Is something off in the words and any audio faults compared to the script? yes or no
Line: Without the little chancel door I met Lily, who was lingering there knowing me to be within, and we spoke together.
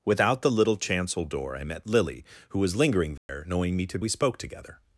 yes